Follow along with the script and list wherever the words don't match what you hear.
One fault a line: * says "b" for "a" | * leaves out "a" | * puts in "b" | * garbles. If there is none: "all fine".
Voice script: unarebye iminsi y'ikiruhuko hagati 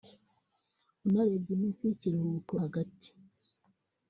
all fine